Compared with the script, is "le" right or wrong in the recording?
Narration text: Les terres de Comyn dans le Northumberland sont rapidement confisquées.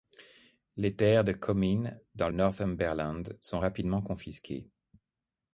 wrong